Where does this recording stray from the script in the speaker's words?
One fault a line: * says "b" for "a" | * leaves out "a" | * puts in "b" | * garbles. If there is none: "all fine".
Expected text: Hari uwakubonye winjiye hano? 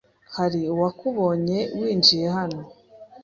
all fine